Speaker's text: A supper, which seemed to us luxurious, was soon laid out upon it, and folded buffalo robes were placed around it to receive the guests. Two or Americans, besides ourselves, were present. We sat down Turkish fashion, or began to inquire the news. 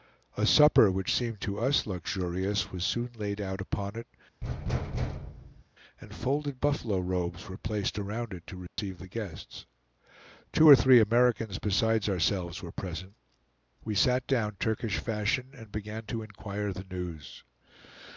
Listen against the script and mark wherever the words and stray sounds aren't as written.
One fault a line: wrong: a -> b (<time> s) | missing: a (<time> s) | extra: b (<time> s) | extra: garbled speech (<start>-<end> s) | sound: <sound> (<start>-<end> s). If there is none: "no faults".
sound: thud (4.4-5.6 s)
sound: dropout (8.7-8.8 s)
extra: three (10.7 s)
wrong: or -> and (15.5 s)